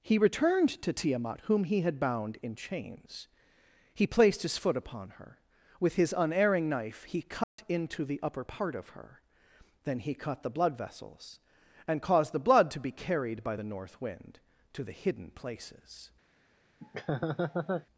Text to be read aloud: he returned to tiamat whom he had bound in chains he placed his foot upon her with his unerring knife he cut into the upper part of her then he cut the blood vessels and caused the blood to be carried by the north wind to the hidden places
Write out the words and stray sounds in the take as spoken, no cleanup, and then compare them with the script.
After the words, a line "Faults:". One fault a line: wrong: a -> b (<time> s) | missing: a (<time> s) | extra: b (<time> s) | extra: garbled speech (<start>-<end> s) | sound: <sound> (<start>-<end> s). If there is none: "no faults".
he returned to tiamat whom he had bound in chains he placed his foot upon her with his unerring knife he cut into the upper part of her then he cut the blood vessels and caused the blood to be carried by the north wind to the hidden places
Faults:
sound: dropout (7.4-7.6 s)
sound: laugh (16.8-17.9 s)